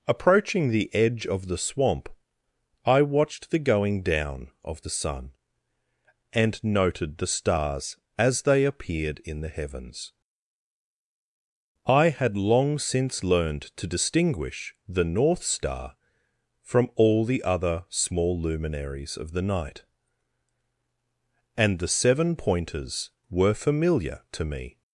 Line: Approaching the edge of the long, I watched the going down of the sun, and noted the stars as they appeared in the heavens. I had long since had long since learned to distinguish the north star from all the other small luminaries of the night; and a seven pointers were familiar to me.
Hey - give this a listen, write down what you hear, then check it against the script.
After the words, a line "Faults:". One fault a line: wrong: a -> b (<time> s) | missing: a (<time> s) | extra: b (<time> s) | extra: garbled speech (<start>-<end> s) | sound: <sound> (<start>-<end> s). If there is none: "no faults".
Approaching the edge of the swamp, I watched the going down of the sun, and noted the stars as they appeared in the heavens. I had long since learned to distinguish the north star from all the other small luminaries of the night; and the seven pointers were familiar to me.
Faults:
wrong: long -> swamp (1.6 s)
missing: had long since (13.2 s)
wrong: a -> the (21.8 s)